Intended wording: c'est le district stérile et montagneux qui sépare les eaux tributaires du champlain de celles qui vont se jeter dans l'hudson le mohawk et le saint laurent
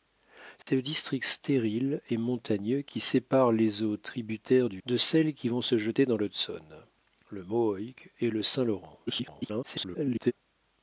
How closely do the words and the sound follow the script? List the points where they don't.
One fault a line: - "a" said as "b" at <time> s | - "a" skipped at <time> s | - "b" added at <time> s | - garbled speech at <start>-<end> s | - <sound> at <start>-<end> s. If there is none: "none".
- dropout at 0.6-0.7 s
- "champlain" skipped at 4.8 s
- garbled speech at 9.1-10.3 s